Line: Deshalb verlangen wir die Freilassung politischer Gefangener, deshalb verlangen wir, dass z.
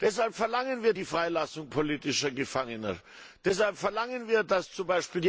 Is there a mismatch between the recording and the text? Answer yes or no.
no